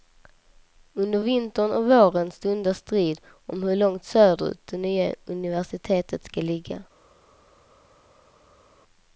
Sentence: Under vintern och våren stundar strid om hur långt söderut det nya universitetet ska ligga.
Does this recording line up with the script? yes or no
yes